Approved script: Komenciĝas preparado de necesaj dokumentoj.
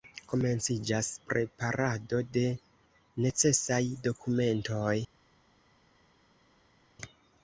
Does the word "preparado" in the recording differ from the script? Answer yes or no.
no